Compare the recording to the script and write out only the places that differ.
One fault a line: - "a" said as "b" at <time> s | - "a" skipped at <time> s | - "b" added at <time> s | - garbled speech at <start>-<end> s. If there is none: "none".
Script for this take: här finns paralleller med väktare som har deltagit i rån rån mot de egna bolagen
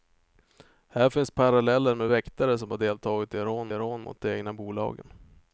none